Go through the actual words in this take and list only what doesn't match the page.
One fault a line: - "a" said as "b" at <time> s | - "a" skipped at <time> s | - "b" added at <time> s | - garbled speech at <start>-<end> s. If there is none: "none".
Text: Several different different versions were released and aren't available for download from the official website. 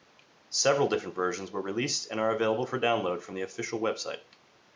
- "different" skipped at 1.1 s
- "aren't" said as "are" at 2.2 s